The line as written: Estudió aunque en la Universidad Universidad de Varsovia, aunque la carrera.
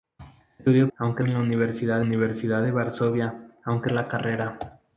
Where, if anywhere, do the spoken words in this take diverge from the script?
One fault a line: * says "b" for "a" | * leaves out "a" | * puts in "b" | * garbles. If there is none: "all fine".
all fine